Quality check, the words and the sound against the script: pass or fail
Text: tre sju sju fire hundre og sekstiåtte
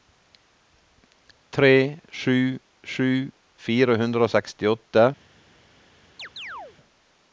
fail